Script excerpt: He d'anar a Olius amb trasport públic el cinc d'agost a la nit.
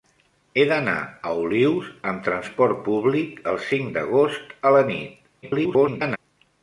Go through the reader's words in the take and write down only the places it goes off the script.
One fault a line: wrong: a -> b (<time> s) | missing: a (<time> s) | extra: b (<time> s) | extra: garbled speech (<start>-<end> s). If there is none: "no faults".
extra: garbled speech (5.4-6.2 s)